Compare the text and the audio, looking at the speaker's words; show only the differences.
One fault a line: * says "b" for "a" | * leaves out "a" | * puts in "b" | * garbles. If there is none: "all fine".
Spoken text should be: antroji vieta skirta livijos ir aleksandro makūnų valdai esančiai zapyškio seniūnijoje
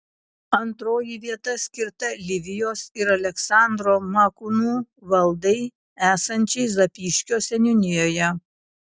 all fine